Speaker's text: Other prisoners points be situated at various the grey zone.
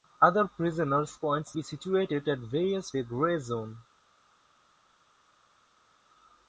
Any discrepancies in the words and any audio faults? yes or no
no